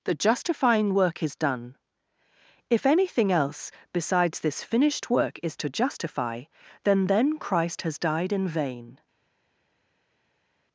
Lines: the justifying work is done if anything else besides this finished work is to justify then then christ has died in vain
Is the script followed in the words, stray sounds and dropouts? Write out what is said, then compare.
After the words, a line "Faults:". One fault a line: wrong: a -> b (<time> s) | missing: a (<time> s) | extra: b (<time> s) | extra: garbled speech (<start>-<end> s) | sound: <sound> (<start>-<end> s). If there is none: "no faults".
the justifying work is done if anything else besides this finished work is to justify then then christ has died in vain
Faults:
no faults